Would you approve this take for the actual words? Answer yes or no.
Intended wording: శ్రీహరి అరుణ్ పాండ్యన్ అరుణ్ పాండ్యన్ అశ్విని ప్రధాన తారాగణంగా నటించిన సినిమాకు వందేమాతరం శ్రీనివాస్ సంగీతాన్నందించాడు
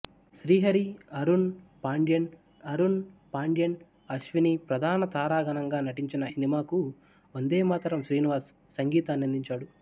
yes